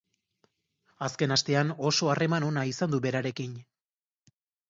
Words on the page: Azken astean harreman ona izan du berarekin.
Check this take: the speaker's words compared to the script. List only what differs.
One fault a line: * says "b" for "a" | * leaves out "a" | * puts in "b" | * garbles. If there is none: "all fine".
* puts in "oso"